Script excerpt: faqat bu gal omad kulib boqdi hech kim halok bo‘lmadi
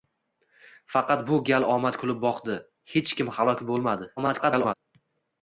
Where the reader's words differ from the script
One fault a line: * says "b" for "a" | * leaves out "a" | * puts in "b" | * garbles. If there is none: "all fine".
* garbles